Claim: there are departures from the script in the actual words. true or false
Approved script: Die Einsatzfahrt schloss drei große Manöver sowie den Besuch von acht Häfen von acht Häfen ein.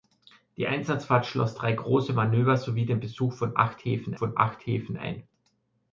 false